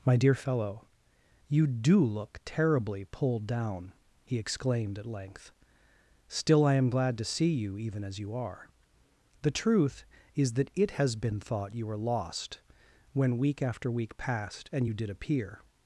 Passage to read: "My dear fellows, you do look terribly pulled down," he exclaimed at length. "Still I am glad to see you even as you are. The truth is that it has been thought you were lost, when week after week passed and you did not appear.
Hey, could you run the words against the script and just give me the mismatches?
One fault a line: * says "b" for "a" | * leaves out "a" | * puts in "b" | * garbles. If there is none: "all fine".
* says "fellow" for "fellows"
* leaves out "not"